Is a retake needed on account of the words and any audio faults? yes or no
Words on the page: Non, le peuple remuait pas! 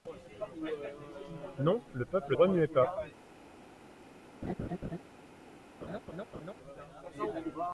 yes